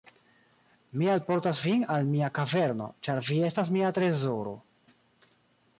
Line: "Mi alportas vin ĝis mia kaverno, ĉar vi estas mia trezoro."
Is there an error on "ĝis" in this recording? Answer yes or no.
yes